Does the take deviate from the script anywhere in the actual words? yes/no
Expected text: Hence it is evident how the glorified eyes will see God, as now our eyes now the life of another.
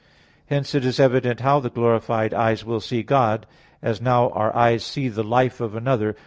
yes